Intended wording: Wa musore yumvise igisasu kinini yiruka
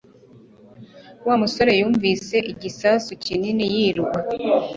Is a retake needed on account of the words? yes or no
no